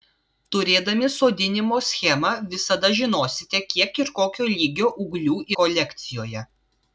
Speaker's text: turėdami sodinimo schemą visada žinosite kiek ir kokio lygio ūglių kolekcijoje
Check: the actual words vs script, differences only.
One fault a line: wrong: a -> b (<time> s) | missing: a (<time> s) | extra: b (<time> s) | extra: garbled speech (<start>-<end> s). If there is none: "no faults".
no faults